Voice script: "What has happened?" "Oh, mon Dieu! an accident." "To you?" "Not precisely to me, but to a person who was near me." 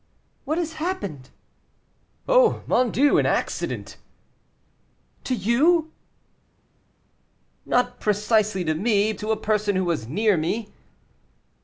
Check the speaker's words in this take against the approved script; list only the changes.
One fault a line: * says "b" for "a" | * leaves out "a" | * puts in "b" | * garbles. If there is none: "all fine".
* leaves out "but"